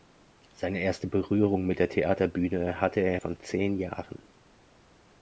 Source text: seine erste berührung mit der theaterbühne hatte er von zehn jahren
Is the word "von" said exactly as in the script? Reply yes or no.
yes